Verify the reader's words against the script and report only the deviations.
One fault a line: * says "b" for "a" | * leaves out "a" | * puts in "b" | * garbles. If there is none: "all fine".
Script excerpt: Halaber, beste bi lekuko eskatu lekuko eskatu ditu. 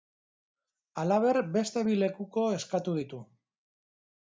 * leaves out "lekuko eskatu"